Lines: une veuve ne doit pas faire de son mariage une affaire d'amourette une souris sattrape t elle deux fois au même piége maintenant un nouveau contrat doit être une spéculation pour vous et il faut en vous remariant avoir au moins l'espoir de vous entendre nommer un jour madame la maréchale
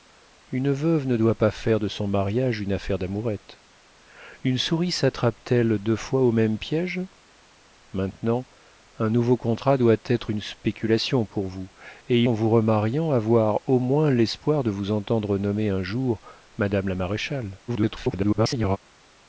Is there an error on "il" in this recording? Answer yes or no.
yes